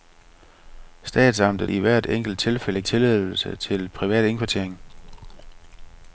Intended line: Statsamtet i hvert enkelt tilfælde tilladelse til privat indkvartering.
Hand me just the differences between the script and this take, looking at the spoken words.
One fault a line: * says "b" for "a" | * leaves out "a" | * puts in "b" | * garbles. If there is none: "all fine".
all fine